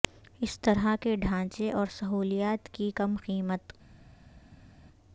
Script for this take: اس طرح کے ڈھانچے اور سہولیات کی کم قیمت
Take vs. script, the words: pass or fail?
pass